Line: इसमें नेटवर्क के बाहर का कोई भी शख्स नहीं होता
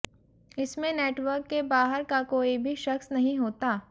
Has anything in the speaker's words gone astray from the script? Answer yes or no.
no